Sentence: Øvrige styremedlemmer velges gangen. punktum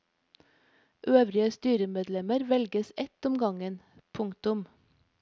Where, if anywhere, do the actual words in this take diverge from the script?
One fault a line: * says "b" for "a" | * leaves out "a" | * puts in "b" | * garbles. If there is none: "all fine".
* puts in "ett om"